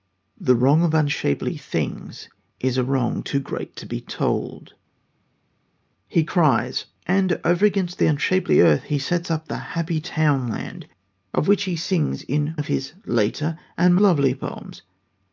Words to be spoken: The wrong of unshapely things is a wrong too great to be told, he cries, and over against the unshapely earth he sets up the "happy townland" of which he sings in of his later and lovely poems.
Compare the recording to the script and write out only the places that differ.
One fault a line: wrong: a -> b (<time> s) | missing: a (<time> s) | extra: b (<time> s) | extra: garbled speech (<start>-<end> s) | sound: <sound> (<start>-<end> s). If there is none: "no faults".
no faults